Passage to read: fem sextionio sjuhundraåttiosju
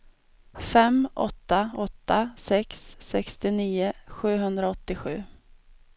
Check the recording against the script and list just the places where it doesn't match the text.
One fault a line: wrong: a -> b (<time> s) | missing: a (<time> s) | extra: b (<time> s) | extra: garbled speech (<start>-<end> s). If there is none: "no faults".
extra: åtta åtta sex (1.1 s)